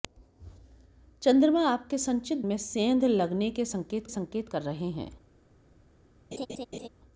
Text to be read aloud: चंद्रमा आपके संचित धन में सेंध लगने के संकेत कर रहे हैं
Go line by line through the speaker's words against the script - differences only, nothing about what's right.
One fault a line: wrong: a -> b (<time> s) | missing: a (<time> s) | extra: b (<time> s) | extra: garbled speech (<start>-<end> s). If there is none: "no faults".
missing: धन (2.5 s)
extra: संकेत (4.1 s)